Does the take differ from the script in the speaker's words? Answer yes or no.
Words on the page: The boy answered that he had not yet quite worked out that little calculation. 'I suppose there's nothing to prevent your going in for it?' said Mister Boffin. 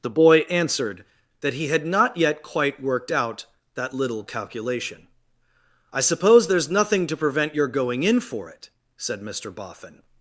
no